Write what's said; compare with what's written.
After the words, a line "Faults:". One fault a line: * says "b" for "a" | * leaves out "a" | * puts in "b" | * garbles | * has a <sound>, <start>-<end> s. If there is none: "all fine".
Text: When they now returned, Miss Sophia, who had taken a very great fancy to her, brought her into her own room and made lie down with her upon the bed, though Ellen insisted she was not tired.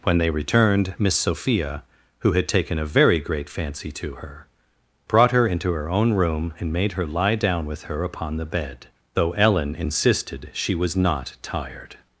When they returned, Miss Sophia, who had taken a very great fancy to her, brought her into her own room and made her lie down with her upon the bed, though Ellen insisted she was not tired.
Faults:
* leaves out "now"
* puts in "her"